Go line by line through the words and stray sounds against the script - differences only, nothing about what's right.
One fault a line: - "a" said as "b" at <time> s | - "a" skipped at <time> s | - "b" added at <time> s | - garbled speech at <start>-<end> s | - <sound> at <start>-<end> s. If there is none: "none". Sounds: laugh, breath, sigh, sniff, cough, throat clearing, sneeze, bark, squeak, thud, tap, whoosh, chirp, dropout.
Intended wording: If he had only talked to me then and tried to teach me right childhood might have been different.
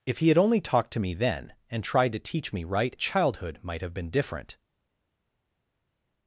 none